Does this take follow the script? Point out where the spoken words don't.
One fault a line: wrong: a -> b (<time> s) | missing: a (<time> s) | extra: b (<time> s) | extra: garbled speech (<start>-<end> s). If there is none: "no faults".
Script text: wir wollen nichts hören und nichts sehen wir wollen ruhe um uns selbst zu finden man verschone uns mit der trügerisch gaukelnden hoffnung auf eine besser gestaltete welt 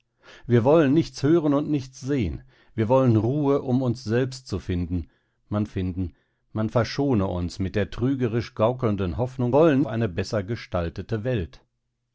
extra: finden man (5.6 s)
wrong: auf -> wollen (9.5 s)